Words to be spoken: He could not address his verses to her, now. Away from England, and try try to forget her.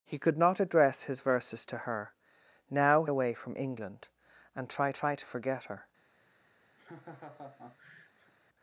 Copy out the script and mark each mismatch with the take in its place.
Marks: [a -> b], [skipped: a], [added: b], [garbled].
He could not address his verses to her, now. Away from England, and try try to forget her.